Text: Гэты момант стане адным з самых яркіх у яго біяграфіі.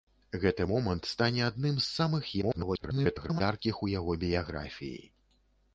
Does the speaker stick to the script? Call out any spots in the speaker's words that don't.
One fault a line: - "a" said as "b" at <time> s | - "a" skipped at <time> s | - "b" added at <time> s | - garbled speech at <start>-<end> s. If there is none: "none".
- garbled speech at 2.4-3.4 s